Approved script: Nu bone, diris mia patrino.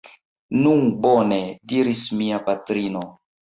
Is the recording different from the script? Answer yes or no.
no